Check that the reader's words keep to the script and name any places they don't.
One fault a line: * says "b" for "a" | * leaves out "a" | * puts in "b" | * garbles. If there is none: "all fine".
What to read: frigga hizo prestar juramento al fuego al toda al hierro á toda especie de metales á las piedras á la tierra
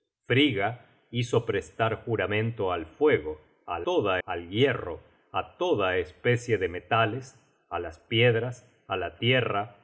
all fine